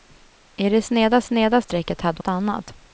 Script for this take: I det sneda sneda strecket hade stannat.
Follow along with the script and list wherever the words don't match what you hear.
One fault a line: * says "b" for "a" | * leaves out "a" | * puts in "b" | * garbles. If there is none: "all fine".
all fine